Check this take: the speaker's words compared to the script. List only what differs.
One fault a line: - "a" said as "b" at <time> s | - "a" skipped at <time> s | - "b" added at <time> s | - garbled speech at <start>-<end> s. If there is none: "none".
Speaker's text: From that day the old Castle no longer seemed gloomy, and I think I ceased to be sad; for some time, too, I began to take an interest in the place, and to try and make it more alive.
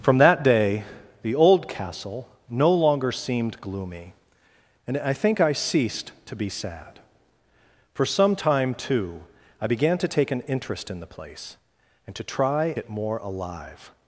- "and make" skipped at 12.7 s